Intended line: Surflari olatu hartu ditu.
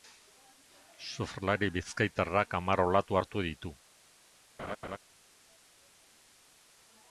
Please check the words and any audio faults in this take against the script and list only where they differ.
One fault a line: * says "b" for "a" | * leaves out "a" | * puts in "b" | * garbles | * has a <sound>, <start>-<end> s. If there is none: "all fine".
* puts in "bizkaitarrak hamar"
* has a laugh, 4.6-5.0 s